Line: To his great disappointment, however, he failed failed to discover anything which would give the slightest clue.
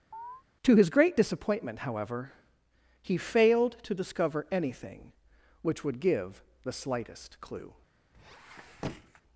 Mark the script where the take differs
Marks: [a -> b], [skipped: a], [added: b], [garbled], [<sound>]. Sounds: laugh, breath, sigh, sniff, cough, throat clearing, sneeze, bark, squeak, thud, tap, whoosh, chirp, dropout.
[chirp] To his great disappointment, however, he failed [skipped: failed] to discover anything which would give the slightest clue. [squeak]